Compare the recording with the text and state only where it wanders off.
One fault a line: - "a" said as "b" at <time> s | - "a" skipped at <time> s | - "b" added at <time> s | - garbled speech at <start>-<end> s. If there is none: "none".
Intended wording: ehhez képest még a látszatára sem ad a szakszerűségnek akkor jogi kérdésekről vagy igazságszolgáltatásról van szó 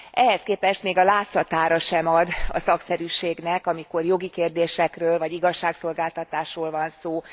- "akkor" said as "amikor" at 3.7 s